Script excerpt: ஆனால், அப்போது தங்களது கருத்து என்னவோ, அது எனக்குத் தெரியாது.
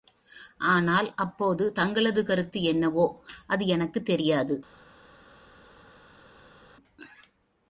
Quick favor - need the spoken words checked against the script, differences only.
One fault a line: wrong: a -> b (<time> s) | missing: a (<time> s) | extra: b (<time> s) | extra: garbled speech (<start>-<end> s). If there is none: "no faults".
no faults